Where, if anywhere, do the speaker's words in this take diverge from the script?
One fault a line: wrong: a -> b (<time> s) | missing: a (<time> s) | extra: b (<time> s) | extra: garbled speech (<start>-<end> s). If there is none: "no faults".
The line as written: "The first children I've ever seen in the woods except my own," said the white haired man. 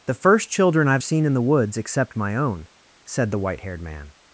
missing: ever (1.0 s)